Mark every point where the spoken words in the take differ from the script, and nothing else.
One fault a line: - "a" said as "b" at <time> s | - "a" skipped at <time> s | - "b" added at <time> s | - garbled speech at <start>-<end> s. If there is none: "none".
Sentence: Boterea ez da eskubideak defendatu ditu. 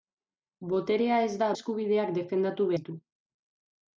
none